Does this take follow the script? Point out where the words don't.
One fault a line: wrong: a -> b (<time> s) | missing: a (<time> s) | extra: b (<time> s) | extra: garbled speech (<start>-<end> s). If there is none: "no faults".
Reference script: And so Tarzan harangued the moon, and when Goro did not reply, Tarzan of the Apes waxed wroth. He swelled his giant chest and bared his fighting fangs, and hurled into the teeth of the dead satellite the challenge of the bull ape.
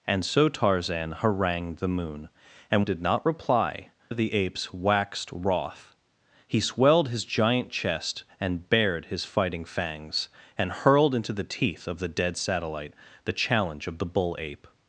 missing: when Goro (2.8 s)
missing: Tarzan (3.9 s)